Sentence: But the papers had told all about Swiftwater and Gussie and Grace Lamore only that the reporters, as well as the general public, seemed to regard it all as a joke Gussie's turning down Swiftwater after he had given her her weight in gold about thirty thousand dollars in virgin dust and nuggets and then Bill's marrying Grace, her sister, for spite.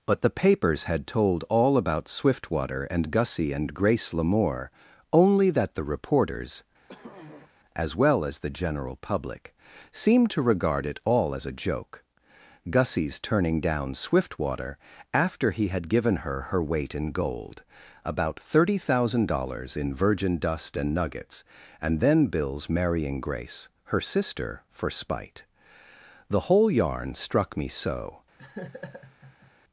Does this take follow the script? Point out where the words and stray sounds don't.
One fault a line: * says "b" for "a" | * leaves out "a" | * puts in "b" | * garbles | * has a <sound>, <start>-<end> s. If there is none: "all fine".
* has a throat clearing, 6.9-7.5 s
* puts in "The whole yarn struck me so"
* has a laugh, 28.4-29.5 s